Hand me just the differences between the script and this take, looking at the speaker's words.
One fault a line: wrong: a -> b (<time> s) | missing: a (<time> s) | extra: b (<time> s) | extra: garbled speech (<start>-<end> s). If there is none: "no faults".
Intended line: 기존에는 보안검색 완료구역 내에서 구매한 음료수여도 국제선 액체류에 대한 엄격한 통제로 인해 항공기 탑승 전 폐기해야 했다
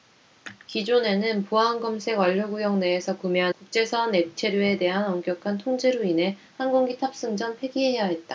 missing: 음료수여도 (3.5 s)